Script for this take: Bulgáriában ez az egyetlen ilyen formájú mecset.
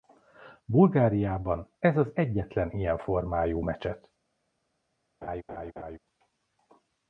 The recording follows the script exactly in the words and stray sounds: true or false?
false